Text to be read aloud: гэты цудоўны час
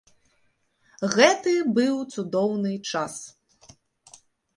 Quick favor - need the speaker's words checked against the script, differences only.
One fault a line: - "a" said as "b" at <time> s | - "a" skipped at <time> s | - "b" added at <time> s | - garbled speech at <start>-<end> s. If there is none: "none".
- "быў" added at 1.8 s